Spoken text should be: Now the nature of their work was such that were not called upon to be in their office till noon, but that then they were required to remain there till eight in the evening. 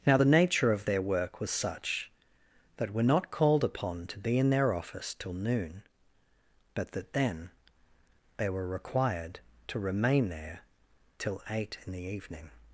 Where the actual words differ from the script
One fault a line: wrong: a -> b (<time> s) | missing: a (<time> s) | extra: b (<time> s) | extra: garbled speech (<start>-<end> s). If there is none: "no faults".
no faults